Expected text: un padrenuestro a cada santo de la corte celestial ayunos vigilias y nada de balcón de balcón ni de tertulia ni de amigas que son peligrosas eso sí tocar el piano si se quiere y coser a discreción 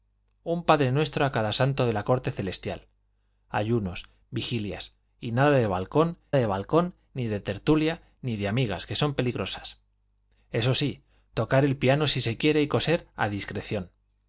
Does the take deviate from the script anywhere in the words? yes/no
no